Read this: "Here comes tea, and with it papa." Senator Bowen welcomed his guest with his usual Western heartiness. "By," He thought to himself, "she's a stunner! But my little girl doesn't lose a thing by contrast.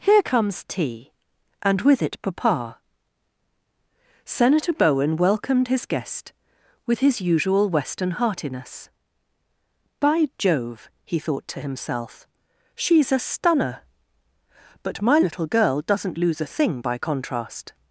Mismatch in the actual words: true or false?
true